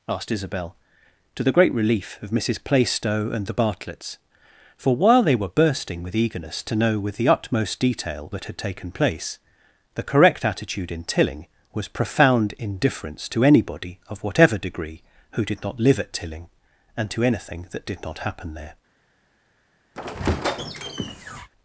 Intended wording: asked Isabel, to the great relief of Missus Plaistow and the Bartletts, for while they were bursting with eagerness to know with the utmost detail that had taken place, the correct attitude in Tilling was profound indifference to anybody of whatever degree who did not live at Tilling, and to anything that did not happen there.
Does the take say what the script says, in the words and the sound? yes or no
no